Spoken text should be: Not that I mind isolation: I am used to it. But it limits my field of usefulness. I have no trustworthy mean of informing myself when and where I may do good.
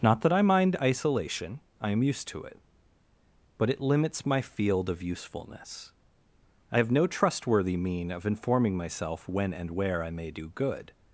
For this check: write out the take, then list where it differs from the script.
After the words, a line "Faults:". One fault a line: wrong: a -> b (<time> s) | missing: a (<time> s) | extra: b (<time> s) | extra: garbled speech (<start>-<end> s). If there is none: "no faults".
Not that I mind isolation: I am used to it. But it limits my field of usefulness. I have no trustworthy mean of informing myself when and where I may do good.
Faults:
no faults